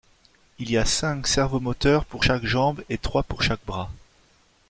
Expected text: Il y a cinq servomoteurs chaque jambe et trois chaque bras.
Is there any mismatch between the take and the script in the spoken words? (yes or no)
yes